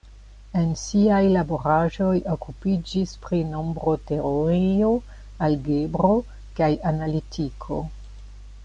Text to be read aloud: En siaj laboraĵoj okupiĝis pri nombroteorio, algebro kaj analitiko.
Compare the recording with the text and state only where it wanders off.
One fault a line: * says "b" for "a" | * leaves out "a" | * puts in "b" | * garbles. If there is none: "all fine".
all fine